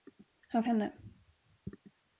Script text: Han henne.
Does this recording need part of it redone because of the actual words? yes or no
no